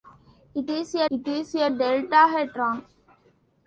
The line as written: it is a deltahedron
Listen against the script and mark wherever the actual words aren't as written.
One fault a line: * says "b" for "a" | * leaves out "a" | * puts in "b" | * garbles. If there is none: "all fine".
* puts in "it is a"